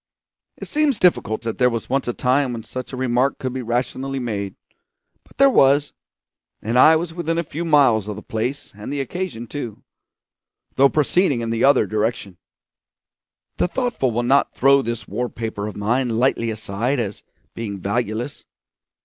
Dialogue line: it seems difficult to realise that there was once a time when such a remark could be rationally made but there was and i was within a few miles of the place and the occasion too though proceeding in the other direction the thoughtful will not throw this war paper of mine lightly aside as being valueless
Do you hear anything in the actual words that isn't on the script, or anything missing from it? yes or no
yes